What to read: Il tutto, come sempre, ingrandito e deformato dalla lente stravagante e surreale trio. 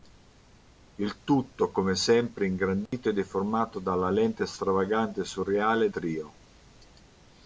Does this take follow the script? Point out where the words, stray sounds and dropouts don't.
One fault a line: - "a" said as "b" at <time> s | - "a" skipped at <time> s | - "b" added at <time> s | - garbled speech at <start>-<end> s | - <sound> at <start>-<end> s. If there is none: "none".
- dropout at 2.9-2.9 s